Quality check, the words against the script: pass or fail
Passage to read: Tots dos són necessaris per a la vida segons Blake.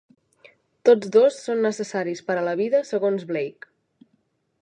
pass